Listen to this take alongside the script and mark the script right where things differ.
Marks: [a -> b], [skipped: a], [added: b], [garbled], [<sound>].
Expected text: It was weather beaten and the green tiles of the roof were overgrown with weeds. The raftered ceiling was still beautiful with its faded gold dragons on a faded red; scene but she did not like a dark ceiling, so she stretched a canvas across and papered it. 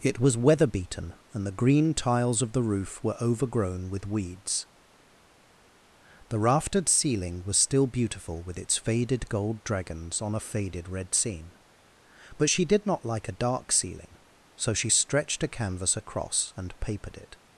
It was weather beaten and the green tiles of the roof were overgrown with weeds. The raftered ceiling was still beautiful with its faded gold dragons on a faded red; scene but she did not like a dark ceiling, so she stretched a canvas across and papered it.